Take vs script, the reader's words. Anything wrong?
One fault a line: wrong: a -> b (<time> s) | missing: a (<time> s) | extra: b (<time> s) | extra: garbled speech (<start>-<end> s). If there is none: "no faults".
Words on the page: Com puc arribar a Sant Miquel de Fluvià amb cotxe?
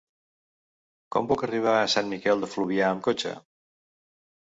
no faults